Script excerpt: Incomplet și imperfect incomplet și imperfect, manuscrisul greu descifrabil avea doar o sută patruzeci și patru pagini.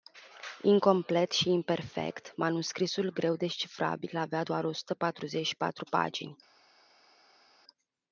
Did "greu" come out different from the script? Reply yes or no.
no